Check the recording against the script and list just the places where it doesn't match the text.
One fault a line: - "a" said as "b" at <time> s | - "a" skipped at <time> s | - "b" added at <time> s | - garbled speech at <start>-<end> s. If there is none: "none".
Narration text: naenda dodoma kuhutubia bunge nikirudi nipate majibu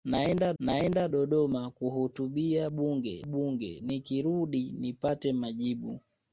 - "naenda" added at 0.6 s
- "bunge" added at 3.2 s